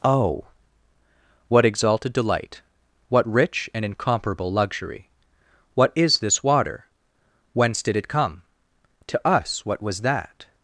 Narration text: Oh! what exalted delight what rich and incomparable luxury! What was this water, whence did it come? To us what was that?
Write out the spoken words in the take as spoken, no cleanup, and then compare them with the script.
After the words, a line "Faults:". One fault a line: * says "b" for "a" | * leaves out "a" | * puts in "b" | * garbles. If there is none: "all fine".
Oh! what exalted delight what rich and incomparable luxury! What is this water, whence did it come? To us what was that?
Faults:
* says "is" for "was"